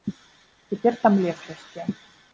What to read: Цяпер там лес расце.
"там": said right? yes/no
yes